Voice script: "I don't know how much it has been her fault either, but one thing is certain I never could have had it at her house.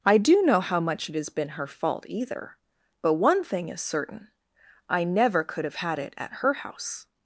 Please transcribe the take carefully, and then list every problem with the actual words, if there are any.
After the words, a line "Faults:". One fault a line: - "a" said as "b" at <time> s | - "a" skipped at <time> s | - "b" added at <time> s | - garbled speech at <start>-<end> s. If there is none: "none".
"I do know how much it has been her fault either, but one thing is certain I never could have had it at her house.
Faults:
- "don't" said as "do" at 0.2 s